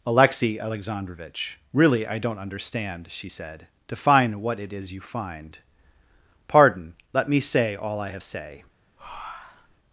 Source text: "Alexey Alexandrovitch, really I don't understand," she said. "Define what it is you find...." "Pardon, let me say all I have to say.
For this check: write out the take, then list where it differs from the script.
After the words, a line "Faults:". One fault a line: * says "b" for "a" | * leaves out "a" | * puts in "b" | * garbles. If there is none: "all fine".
"Alexey Alexandrovitch, really I don't understand," she said. "Define what it is you find...." "Pardon, let me say all I have say.
Faults:
* leaves out "to"